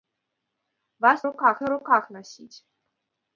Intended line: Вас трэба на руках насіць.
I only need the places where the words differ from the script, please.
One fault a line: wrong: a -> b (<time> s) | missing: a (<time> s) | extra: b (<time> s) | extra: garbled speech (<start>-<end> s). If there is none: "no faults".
wrong: трэба -> руках (1.3 s)